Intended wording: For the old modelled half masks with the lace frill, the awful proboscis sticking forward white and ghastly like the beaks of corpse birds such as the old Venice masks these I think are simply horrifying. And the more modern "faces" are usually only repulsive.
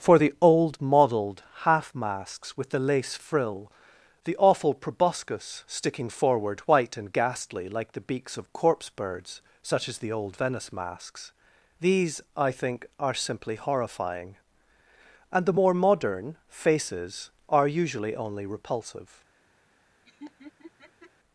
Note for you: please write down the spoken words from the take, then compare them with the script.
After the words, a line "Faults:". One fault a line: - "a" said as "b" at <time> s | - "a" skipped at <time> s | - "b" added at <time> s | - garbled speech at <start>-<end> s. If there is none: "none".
For the old modelled half masks with the lace frill, the awful proboscis sticking forward white and ghastly like the beaks of corpse birds such as the old Venice masks these I think are simply horrifying. And the more modern "faces" are usually only repulsive.
Faults:
none